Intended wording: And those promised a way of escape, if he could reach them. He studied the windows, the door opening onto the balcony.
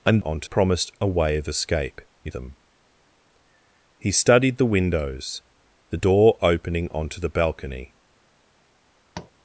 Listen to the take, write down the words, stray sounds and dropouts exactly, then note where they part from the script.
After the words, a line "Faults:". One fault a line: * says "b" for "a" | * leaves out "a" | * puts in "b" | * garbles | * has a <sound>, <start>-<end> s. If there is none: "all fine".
And onto promised a way of escape, if them. He studied the windows, the door opening onto the balcony.
Faults:
* says "onto" for "those"
* leaves out "he could reach"
* has a tap, 9.1-9.3 s